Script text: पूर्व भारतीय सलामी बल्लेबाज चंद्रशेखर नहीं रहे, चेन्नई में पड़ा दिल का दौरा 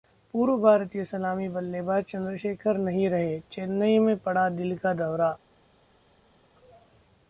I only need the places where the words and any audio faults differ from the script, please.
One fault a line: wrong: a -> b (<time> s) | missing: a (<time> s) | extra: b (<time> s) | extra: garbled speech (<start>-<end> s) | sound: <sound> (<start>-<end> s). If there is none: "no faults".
no faults